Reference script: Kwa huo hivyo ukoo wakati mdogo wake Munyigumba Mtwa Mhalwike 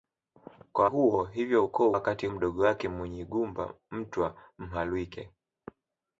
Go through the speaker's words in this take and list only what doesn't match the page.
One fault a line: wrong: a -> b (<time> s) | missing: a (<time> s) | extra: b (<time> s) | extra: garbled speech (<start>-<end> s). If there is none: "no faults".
no faults